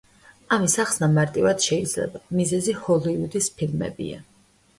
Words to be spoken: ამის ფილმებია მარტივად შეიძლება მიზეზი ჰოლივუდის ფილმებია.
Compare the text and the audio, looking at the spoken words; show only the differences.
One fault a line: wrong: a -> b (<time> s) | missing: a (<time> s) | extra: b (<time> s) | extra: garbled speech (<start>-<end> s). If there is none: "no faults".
wrong: ფილმებია -> ახსნა (0.8 s)